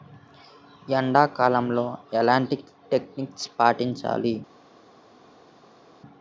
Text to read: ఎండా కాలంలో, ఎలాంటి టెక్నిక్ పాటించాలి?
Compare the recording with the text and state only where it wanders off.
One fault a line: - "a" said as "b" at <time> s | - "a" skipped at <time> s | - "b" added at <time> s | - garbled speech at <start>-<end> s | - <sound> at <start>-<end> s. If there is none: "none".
none